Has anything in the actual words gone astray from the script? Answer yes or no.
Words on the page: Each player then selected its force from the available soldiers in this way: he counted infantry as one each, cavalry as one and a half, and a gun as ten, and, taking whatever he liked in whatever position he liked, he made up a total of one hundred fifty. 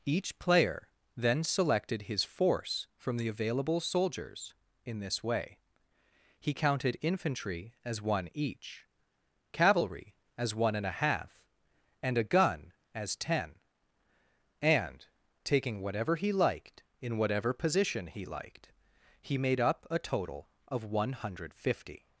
yes